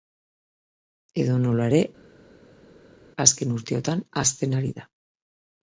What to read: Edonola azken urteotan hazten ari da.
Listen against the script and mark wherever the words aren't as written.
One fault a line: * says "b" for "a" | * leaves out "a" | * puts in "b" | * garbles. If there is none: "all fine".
* puts in "ere"